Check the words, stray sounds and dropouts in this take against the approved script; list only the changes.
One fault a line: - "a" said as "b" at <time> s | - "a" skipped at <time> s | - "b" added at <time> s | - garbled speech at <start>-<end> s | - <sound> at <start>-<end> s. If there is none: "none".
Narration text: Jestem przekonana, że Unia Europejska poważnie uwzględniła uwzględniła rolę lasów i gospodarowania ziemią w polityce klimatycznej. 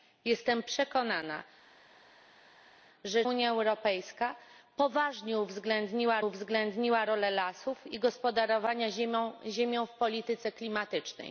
none